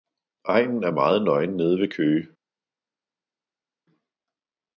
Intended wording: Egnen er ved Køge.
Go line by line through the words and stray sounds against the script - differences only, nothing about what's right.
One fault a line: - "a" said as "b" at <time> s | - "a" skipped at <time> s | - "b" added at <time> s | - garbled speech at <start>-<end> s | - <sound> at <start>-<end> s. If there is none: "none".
- "meget nøgen nede" added at 0.9 s